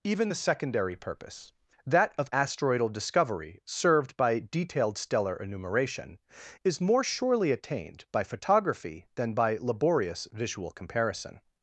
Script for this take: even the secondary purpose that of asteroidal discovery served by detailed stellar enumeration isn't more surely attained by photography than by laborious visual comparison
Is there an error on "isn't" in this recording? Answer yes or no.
yes